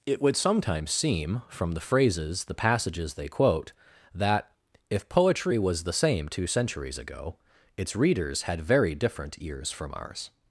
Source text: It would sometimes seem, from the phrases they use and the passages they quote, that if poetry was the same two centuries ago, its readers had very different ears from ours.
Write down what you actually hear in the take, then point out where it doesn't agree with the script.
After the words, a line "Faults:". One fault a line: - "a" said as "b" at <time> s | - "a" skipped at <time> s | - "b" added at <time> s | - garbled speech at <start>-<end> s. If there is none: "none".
It would sometimes seem, from the phrases the passages they quote, that if poetry was the same two centuries ago, its readers had very different ears from ours.
Faults:
- "they use and" skipped at 2.5 s